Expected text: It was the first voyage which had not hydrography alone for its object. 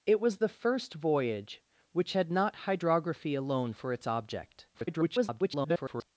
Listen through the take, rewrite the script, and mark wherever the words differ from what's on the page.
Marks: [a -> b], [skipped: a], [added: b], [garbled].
It was the first voyage which had not hydrography alone for its object. [garbled]